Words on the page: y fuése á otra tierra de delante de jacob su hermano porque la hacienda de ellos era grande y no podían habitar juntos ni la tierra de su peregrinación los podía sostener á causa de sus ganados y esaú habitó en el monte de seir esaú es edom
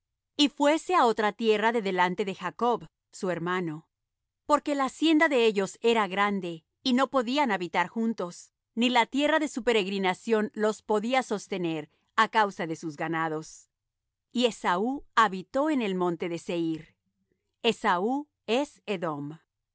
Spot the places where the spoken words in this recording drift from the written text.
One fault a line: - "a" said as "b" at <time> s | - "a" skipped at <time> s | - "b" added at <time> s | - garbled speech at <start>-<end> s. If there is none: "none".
none